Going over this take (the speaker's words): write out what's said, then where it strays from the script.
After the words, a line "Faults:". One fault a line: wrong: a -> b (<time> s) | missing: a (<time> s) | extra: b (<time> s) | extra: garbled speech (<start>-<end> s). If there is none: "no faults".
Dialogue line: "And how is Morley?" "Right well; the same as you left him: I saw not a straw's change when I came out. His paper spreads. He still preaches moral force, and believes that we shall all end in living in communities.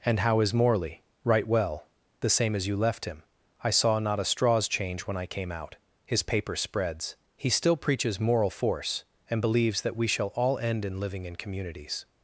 "And how is Morley?" "Right well; the same as you left him: I saw not a straw's change when I came out. His paper spreads. He still preaches moral force, and believes that we shall all end in living in communities.
Faults:
no faults